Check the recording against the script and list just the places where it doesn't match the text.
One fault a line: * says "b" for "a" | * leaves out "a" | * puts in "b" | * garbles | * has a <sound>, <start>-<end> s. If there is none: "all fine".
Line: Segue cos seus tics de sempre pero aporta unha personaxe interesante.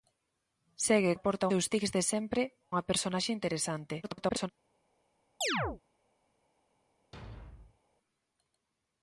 * says "aporta" for "cos"
* leaves out "pero aporta"
* garbles
* has a chirp, 5.4-5.8 s
* has a thud, 7.1-7.8 s